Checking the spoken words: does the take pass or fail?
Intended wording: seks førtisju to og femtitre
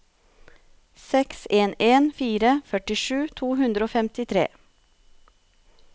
fail